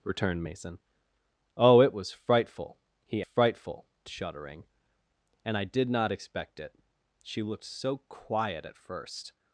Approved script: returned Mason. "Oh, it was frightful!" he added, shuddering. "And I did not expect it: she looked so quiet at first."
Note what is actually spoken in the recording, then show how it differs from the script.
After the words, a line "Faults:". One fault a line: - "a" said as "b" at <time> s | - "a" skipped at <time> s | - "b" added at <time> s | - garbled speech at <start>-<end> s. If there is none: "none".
returned Mason. "Oh, it was frightful!" he frightful, shuddering. "And I did not expect it: she looked so quiet at first."
Faults:
- "added" said as "frightful" at 3.2 s